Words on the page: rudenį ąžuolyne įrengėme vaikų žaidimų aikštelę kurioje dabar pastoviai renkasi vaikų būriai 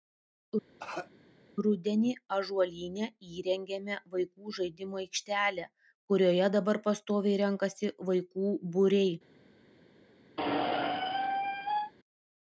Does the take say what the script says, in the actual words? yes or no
yes